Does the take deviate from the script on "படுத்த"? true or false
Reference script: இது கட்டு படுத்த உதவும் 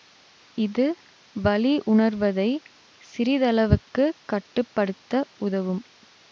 false